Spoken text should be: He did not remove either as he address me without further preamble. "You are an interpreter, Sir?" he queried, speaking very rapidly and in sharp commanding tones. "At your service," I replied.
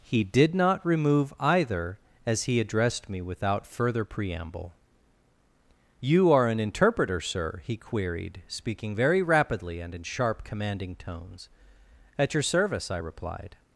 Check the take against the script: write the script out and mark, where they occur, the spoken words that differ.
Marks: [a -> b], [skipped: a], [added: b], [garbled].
He did not remove either as he [address -> addressed] me without further preamble. "You are an interpreter, Sir?" he queried, speaking very rapidly and in sharp commanding tones. "At your service," I replied.